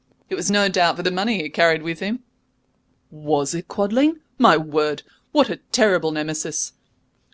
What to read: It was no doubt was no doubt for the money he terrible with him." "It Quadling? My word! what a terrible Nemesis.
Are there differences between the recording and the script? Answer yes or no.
yes